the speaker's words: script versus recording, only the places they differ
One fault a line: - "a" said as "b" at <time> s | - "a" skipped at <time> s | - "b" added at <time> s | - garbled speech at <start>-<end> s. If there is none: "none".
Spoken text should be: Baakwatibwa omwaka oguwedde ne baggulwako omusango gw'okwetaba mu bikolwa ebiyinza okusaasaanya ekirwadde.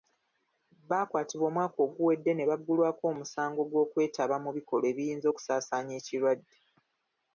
none